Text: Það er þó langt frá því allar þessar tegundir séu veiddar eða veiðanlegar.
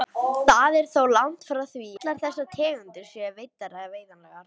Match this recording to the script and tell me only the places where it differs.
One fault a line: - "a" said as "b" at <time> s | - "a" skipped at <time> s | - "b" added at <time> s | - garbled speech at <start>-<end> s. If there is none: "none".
none